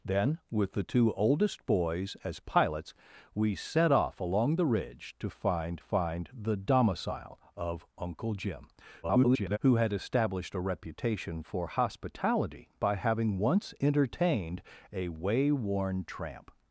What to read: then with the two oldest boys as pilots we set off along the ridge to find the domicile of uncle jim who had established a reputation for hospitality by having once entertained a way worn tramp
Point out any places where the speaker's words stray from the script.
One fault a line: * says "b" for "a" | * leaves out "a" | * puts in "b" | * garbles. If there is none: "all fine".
* puts in "find"
* garbles